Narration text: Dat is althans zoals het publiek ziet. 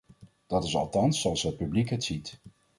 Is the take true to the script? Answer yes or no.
no